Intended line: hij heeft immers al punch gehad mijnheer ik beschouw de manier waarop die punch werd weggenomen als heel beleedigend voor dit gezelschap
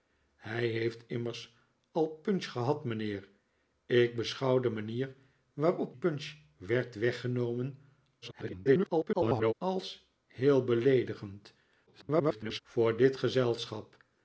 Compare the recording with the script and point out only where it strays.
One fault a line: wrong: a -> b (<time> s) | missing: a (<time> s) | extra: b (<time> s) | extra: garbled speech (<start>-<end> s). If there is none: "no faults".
missing: die (6.0 s)
extra: garbled speech (8.2-9.5 s)
extra: garbled speech (11.9-12.6 s)